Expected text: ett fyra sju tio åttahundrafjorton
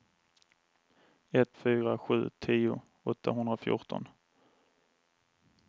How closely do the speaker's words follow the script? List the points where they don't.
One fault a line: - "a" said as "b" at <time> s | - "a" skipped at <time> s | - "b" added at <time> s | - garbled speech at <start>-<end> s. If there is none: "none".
none